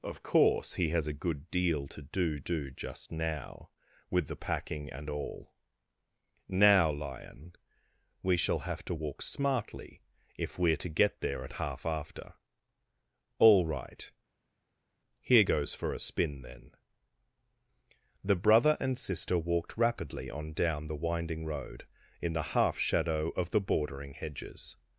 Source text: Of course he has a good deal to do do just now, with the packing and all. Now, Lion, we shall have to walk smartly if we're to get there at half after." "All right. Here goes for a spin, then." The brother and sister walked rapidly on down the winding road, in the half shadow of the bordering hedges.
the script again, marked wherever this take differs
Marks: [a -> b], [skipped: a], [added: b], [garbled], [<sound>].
Of course he has a good deal to do do just now, with the packing and all. Now, Lion, we shall have to walk smartly if we're to get there at half after." "All right. Here goes for a spin, then." The brother and sister walked rapidly on down the winding road, in the half shadow of the bordering hedges.